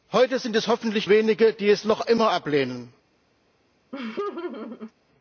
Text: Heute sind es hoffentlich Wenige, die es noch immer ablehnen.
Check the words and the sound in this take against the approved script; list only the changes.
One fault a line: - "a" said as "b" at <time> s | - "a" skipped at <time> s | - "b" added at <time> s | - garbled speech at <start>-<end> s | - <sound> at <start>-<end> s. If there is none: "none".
- laugh at 3.9-4.9 s